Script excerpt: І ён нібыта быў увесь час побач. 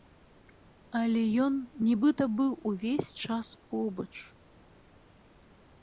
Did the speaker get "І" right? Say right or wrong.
wrong